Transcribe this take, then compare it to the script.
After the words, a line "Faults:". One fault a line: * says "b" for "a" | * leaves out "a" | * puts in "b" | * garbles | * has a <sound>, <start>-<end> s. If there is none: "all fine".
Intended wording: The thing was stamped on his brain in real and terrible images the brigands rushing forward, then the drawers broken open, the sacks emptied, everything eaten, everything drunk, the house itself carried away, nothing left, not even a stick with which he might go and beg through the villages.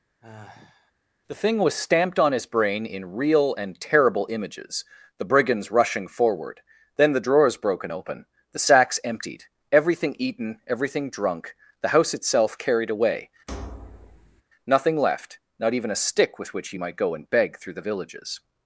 The thing was stamped on his brain in real and terrible images the brigands rushing forward, then the drawers broken open, the sacks emptied, everything eaten, everything drunk, the house itself carried away, nothing left, not even a stick with which he might go and beg through the villages.
Faults:
* has a sigh, 0.2-0.9 s
* has a thud, 13.5-14.4 s